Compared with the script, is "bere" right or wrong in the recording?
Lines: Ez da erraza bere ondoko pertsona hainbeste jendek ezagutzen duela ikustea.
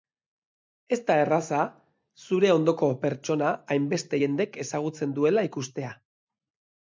wrong